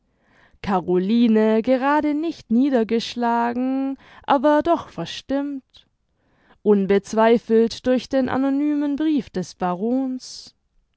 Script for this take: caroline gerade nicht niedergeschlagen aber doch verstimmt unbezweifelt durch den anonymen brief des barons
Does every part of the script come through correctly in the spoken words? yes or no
yes